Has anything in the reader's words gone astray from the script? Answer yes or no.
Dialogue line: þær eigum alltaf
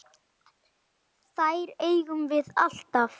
yes